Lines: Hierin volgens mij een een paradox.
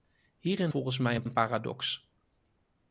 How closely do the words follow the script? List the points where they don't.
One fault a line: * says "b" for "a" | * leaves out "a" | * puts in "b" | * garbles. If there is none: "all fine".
all fine